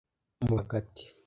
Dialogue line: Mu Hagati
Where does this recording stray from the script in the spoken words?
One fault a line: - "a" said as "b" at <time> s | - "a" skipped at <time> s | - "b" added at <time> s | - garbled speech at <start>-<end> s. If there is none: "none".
none